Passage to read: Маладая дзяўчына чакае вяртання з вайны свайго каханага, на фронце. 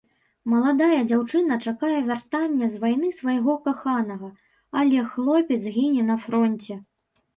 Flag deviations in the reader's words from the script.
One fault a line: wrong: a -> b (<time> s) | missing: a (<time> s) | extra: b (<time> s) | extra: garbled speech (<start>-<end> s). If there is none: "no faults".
extra: але хлопец гіне (4.8 s)